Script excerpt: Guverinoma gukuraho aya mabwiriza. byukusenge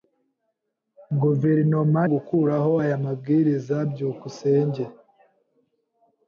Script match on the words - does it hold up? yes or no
yes